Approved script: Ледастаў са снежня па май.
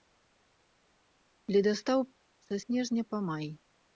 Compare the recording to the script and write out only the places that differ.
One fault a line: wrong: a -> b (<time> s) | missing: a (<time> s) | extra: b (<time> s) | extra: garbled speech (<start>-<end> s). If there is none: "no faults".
no faults